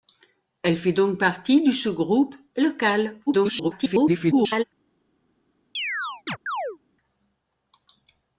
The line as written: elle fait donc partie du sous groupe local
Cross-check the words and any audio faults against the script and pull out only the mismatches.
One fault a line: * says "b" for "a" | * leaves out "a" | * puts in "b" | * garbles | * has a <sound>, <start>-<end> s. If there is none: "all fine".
* garbles
* has a chirp, 5.7-6.8 s